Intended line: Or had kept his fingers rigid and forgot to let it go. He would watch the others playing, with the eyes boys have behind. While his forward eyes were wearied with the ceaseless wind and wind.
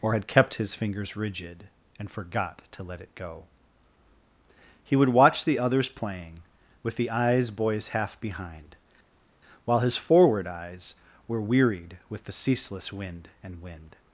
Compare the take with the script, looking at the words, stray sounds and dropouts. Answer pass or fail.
fail